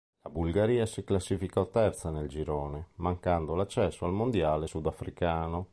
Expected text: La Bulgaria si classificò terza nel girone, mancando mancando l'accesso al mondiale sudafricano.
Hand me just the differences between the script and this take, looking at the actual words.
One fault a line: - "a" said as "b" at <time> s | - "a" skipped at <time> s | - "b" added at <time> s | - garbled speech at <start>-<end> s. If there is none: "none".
- "mancando" skipped at 3.5 s